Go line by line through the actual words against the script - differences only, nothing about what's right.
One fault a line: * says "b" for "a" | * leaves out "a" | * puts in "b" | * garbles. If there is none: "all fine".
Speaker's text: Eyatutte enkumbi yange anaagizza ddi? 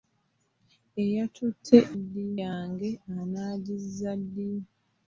* says "ddi" for "enkumbi"